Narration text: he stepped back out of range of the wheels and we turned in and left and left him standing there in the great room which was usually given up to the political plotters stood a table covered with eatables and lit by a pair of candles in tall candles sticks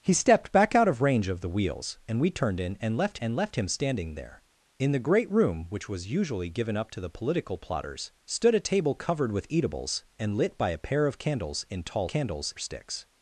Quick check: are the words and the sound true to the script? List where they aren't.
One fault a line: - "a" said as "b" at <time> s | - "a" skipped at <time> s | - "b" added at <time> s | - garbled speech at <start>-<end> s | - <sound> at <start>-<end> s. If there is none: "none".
none